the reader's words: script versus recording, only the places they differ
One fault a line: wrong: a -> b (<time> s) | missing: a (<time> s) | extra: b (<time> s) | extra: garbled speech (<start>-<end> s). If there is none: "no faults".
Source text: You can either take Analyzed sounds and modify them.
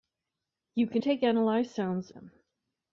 missing: either (1.0 s)
missing: and modify (2.1 s)